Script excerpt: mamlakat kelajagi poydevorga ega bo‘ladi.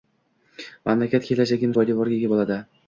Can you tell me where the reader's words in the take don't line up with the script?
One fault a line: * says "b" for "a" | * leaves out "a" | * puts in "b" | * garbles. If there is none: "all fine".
all fine